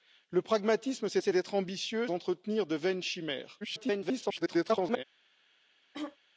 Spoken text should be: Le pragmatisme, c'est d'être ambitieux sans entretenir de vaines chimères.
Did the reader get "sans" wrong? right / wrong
wrong